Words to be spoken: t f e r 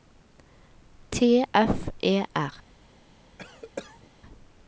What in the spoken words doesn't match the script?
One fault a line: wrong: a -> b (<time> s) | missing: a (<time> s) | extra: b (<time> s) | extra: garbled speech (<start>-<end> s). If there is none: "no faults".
no faults